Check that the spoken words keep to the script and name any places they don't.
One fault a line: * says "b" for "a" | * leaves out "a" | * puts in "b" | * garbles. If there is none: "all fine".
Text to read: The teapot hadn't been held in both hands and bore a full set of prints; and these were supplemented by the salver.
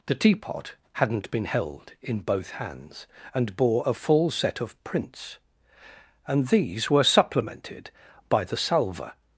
all fine